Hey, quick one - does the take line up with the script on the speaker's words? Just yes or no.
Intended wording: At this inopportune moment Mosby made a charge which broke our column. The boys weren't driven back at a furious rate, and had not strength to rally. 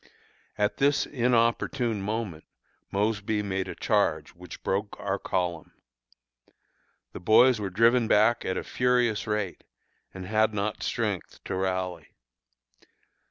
no